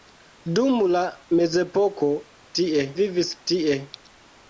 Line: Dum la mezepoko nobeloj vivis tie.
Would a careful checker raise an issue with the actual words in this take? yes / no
yes